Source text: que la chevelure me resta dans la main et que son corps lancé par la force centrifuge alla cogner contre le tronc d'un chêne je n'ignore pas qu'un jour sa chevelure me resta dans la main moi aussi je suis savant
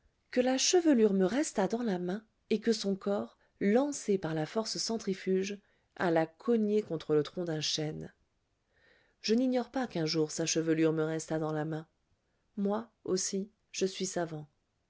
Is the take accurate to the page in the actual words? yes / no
yes